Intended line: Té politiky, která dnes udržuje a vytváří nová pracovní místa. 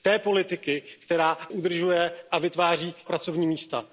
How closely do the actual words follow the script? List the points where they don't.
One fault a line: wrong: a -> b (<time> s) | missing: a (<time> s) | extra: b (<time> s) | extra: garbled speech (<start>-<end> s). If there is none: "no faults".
missing: dnes (1.4 s)
missing: nová (2.9 s)